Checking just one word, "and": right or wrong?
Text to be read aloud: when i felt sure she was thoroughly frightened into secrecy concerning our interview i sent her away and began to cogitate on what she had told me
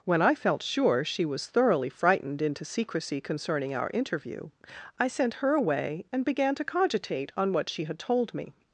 right